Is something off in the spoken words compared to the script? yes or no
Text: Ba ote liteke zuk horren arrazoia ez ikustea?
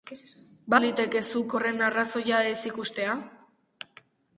yes